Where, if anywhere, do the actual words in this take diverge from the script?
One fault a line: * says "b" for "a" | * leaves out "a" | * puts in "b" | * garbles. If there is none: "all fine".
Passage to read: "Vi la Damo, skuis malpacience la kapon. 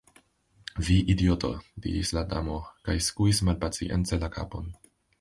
* puts in "idioto diris"
* puts in "kaj"